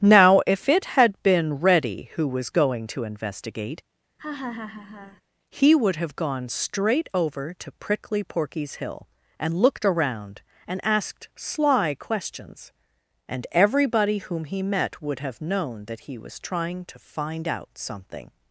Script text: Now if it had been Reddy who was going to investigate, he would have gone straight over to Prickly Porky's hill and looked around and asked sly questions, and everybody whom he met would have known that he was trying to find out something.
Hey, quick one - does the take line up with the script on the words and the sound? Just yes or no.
no